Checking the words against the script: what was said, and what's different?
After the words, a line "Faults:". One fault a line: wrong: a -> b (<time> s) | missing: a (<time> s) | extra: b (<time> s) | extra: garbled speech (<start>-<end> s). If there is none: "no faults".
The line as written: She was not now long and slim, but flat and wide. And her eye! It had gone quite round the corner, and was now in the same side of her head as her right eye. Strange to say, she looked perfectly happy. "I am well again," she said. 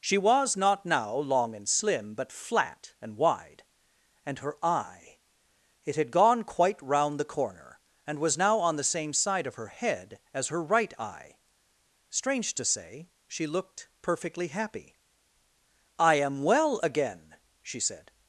She was not now long and slim, but flat and wide. And her eye! It had gone quite round the corner, and was now on the same side of her head as her right eye. Strange to say, she looked perfectly happy. "I am well again," she said.
Faults:
wrong: in -> on (8.6 s)